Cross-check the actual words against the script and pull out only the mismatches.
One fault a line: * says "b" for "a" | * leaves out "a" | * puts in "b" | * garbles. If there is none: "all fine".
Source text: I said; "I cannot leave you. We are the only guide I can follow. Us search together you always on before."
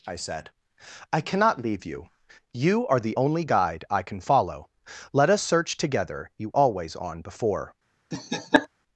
* says "You" for "We"
* puts in "Let"